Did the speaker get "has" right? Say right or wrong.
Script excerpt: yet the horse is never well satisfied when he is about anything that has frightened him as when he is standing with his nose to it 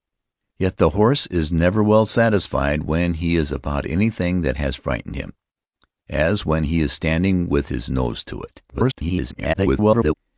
right